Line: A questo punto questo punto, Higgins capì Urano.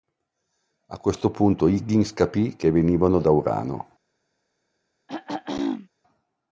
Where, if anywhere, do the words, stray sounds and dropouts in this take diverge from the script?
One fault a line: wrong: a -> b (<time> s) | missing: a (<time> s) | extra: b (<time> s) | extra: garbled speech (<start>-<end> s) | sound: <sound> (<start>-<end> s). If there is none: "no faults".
wrong: questo punto Higgins capì -> Higgins capì che venivano da (1.7 s)
sound: throat clearing (5.1-5.9 s)